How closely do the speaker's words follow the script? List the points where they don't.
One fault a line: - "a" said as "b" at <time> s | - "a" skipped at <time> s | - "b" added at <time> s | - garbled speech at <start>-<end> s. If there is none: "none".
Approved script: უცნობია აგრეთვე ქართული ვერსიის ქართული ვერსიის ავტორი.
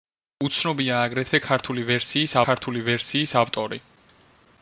none